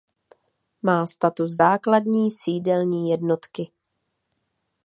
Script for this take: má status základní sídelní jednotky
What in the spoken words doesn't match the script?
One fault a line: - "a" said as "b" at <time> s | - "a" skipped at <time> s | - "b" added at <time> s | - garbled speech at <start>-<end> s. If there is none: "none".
none